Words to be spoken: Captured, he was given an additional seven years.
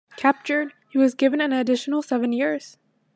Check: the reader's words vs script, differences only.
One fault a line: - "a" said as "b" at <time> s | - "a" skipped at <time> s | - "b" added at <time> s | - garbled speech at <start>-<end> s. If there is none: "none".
none